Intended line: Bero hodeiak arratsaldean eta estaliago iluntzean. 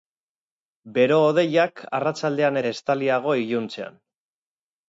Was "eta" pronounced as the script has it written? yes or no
no